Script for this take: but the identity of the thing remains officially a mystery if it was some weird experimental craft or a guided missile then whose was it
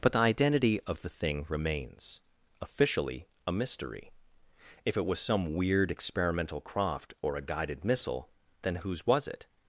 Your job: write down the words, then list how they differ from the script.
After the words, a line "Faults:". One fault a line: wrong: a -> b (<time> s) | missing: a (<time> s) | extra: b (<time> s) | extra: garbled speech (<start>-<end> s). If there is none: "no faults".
but the identity of the thing remains officially a mystery if it was some weird experimental craft or a guided missile then whose was it
Faults:
no faults